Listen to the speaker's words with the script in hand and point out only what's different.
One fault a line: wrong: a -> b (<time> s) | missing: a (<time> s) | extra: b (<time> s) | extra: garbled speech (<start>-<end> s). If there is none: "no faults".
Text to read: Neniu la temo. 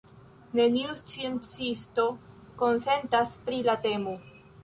extra: sciencisto konsentas pri (1.0 s)